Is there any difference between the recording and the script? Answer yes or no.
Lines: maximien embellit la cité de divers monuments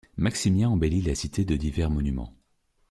no